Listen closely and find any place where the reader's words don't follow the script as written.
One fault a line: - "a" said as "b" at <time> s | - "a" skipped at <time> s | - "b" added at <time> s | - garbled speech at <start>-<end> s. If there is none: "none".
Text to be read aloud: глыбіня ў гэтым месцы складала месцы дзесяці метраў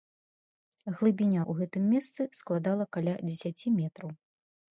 - "месцы" said as "каля" at 3.0 s